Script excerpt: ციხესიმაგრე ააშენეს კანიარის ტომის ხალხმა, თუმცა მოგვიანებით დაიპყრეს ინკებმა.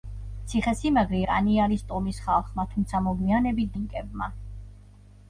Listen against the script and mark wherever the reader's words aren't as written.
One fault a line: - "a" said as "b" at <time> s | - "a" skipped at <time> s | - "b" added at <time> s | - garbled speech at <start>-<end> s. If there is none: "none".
- "ააშენეს" skipped at 1.2 s
- "დაიპყრეს" skipped at 3.7 s